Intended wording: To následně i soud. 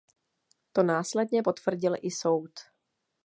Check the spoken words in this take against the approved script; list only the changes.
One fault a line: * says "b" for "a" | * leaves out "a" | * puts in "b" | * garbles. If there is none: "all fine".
* puts in "potvrdil"